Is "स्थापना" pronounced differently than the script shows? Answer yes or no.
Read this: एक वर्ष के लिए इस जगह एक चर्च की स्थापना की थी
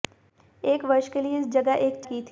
yes